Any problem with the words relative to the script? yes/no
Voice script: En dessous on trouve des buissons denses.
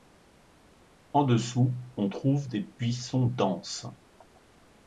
no